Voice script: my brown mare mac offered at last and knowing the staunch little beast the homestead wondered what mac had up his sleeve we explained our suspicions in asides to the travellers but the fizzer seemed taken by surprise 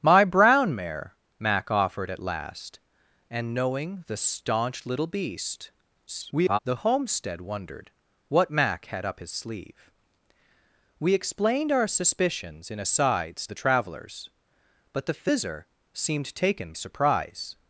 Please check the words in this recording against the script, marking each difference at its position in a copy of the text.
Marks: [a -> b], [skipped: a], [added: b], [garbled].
my brown mare mac offered at last and knowing the staunch little beast [garbled] the homestead wondered what mac had up his sleeve we explained our suspicions in asides [skipped: to] the travellers but the fizzer seemed taken [skipped: by] surprise